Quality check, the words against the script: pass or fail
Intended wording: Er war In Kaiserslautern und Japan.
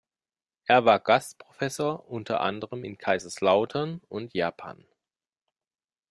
fail